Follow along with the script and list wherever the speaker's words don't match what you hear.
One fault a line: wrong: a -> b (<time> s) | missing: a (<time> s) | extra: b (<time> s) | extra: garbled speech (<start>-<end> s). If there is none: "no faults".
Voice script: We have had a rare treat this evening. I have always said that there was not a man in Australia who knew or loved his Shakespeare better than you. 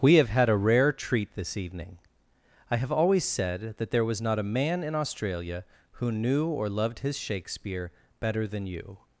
no faults